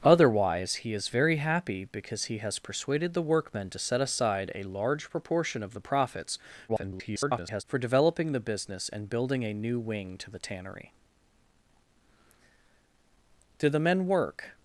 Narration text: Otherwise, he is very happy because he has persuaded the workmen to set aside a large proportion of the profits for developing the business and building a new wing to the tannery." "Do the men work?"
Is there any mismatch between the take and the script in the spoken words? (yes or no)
yes